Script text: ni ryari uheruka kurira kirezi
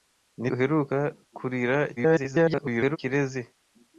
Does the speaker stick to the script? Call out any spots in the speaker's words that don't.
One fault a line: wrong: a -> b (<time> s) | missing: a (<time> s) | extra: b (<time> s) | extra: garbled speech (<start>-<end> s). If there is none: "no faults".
missing: ryari (0.5 s)
extra: garbled speech (2.0-3.0 s)